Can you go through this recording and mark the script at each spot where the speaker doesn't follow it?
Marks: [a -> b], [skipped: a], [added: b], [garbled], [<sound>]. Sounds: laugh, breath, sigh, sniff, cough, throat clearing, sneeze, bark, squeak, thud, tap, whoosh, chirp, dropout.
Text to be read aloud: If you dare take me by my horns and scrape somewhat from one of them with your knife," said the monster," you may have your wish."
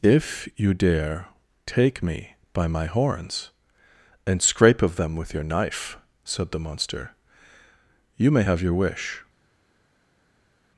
If you dare take me by my horns and scrape [skipped: somewhat from one] of them with your knife," said the monster," you may have your wish."